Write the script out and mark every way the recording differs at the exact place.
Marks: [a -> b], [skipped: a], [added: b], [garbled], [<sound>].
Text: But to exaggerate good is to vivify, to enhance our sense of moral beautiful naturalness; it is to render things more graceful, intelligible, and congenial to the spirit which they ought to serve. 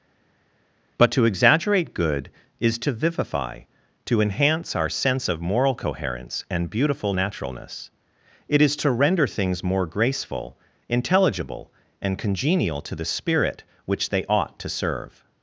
But to exaggerate good is to vivify, to enhance our sense of moral [added: coherence and] beautiful naturalness; it is to render things more graceful, intelligible, and congenial to the spirit which they ought to serve.